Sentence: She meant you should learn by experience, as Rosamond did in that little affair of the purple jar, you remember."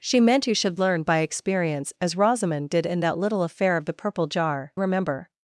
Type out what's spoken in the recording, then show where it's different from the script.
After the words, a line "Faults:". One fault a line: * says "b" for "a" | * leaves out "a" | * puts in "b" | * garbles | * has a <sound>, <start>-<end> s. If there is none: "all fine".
She meant you should learn by experience, as Rosamond did in that little affair of the purple jar, remember."
Faults:
* leaves out "you"